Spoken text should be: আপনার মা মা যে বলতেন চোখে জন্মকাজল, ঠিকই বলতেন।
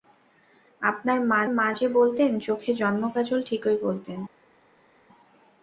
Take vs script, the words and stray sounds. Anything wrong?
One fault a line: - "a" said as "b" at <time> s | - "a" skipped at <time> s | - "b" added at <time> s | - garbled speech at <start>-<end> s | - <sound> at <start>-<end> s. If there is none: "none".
none